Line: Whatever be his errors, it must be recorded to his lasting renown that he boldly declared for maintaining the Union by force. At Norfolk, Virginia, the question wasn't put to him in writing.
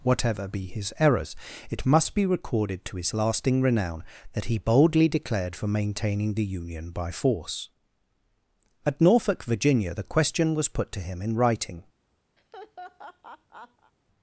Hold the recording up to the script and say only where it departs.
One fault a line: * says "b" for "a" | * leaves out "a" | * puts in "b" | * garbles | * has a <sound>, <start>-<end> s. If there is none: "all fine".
* says "was" for "wasn't"
* has a laugh, 12.4-13.9 s